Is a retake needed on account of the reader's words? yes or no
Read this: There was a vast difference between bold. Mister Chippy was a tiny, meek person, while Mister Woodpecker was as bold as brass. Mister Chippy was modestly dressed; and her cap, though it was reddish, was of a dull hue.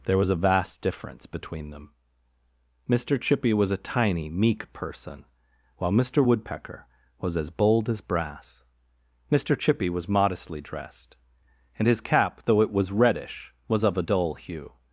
yes